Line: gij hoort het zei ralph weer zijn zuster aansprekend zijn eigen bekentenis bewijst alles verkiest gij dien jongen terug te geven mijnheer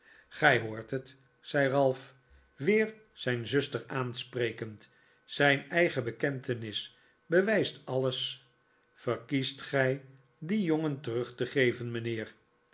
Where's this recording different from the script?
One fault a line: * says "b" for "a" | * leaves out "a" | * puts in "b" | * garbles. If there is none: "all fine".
all fine